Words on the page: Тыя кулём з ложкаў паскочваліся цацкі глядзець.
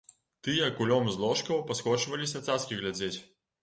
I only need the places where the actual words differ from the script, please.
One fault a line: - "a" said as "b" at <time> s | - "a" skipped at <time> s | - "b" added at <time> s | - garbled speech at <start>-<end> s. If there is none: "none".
none